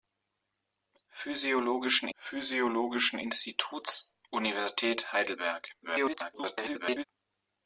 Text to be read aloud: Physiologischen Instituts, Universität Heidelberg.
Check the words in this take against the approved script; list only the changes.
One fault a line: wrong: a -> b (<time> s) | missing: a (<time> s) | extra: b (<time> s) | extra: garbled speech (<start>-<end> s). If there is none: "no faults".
extra: physiologischen (2.2 s)
extra: garbled speech (5.8-7.0 s)